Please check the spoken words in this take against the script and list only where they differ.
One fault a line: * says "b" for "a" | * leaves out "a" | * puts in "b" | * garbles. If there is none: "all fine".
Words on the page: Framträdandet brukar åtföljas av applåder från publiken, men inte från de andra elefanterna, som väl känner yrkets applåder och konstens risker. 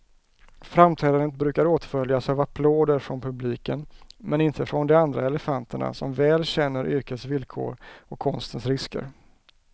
* says "villkor" for "applåder"